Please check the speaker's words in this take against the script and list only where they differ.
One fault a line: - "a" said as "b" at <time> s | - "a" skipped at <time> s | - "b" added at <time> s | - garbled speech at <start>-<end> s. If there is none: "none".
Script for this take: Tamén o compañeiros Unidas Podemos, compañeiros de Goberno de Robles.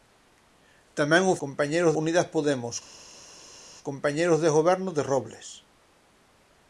none